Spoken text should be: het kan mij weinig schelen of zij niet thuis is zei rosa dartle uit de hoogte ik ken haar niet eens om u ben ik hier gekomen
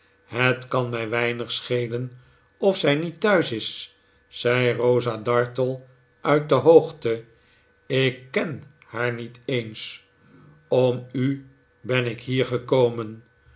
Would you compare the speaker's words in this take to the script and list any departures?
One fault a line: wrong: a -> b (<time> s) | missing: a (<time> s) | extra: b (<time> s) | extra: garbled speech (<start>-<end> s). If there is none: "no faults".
no faults